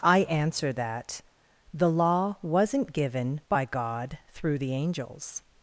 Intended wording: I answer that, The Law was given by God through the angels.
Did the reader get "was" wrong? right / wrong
wrong